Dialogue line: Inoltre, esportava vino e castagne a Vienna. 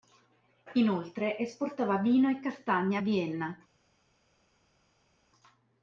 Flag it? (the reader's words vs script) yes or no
no